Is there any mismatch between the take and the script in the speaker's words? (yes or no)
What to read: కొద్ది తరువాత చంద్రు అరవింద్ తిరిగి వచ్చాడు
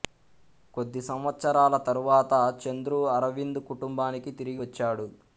yes